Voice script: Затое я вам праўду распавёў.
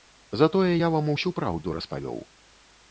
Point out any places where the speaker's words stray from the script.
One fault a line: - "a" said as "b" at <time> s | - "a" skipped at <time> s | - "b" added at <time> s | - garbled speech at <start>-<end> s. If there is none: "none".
- "усю" added at 1.1 s